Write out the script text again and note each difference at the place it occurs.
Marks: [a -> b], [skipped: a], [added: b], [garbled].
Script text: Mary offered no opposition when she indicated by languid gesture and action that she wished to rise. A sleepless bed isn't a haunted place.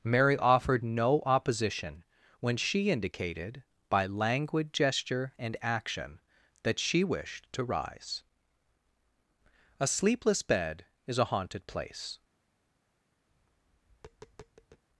Mary offered no opposition when she indicated by languid gesture and action that she wished to rise. A sleepless bed [isn't -> is] a haunted place.